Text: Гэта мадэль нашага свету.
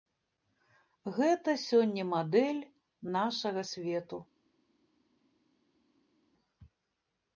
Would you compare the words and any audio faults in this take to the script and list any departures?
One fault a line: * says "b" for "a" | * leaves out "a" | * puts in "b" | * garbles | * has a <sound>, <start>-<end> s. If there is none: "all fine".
* puts in "сёння"